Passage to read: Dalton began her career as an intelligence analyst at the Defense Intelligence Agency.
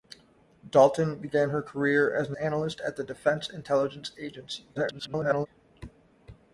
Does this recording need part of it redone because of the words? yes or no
yes